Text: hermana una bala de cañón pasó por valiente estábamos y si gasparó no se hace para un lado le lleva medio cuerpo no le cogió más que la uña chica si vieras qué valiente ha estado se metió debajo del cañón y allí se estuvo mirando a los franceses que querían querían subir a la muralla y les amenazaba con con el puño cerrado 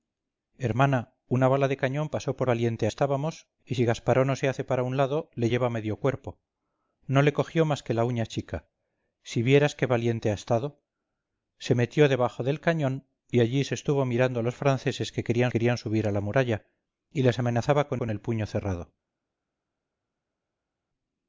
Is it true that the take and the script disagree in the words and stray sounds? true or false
false